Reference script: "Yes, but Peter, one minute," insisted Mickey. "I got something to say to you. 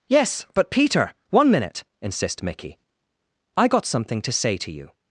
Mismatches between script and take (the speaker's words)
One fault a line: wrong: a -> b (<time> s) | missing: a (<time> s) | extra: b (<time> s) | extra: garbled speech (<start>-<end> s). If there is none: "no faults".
wrong: insisted -> insist (2.0 s)